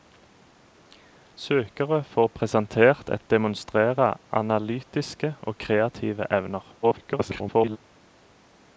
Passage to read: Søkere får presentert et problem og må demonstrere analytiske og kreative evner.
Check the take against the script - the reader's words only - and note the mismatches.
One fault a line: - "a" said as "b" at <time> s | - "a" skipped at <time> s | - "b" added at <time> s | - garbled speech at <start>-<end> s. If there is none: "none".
- "problem og må" skipped at 3.2 s
- garbled speech at 6.8-7.8 s